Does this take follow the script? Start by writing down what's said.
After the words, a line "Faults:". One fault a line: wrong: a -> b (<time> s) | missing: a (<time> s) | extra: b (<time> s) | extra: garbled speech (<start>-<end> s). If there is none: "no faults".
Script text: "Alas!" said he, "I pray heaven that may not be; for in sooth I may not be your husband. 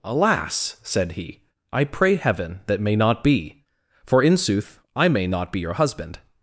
"Alas!" said he, "I pray heaven that may not be; for in sooth I may not be your husband.
Faults:
no faults